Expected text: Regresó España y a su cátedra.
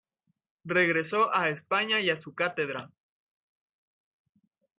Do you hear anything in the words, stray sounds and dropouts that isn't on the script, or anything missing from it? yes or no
yes